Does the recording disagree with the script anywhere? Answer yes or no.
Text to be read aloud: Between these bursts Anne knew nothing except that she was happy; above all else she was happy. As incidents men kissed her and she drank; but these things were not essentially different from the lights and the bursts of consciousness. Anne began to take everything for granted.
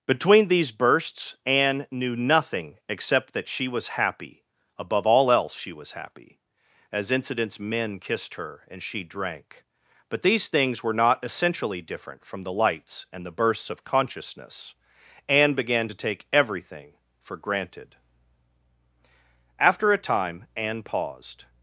yes